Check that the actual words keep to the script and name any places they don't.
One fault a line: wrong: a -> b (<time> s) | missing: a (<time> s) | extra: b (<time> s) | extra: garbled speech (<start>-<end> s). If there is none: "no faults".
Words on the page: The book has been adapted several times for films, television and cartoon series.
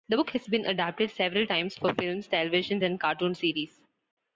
no faults